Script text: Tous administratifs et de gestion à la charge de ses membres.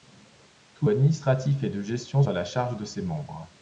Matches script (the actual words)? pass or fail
pass